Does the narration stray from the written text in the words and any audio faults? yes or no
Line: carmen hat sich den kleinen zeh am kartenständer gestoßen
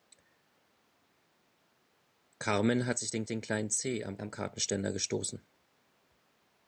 yes